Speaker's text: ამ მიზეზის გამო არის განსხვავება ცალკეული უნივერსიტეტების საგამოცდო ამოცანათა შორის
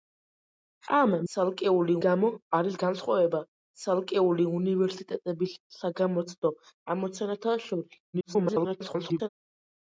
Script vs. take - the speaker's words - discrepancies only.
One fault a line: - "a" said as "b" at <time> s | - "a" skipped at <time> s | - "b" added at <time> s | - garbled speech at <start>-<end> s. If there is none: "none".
- "მიზეზის" said as "ცალკეული" at 1.3 s
- garbled speech at 8.1-9.3 s